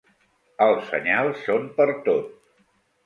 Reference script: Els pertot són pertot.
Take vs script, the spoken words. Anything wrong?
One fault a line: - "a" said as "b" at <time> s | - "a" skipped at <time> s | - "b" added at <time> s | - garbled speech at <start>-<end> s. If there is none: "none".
- "pertot" said as "senyals" at 0.9 s